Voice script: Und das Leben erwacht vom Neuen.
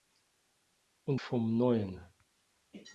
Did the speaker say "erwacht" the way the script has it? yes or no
no